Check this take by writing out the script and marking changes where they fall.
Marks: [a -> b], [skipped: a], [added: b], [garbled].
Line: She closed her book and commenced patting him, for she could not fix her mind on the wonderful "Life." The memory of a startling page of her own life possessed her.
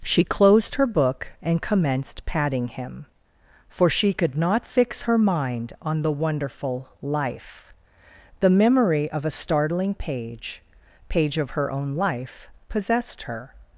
She closed her book and commenced patting him, for she could not fix her mind on the wonderful "Life." The memory of a startling page [added: page] of her own life possessed her.